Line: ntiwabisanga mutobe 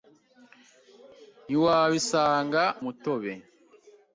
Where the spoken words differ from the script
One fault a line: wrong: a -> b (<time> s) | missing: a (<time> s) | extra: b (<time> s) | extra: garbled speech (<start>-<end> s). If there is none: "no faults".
no faults